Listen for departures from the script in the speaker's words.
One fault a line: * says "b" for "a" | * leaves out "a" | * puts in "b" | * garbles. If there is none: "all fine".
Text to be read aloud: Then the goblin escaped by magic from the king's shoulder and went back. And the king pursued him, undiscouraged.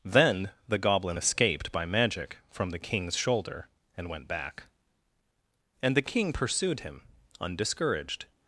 all fine